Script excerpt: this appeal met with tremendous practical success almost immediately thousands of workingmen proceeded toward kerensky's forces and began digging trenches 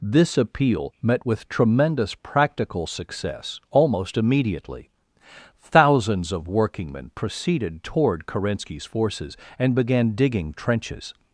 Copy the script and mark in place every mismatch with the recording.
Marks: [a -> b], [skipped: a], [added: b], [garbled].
this appeal met with tremendous practical success almost immediately thousands of workingmen proceeded toward kerensky's forces and began digging trenches